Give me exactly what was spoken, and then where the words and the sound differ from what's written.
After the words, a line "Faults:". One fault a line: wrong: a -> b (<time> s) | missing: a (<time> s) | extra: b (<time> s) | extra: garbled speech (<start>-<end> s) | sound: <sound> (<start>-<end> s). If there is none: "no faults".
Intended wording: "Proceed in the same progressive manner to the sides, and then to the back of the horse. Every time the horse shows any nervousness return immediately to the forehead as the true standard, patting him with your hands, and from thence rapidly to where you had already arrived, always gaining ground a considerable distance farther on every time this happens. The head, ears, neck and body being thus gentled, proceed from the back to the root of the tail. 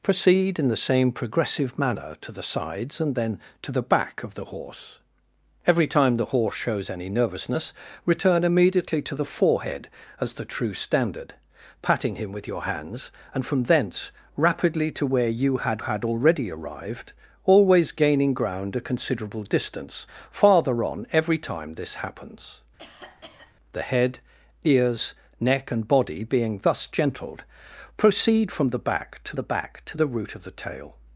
"Proceed in the same progressive manner to the sides, and then to the back of the horse. Every time the horse shows any nervousness return immediately to the forehead as the true standard, patting him with your hands, and from thence rapidly to where you had had already arrived, always gaining ground a considerable distance farther on every time this happens. The head, ears, neck and body being thus gentled, proceed from the back to the back to the root of the tail.
Faults:
extra: had (15.8 s)
sound: cough (22.8-23.5 s)
extra: back to the (29.5 s)